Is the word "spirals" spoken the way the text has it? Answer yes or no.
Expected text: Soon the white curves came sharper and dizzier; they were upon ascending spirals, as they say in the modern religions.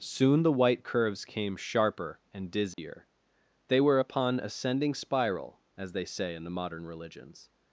no